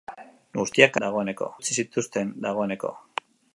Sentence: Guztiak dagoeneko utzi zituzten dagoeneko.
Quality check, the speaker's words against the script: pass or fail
pass